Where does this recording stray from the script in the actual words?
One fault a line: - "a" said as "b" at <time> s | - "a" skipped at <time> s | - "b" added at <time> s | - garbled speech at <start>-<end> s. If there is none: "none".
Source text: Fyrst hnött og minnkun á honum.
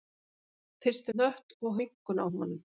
none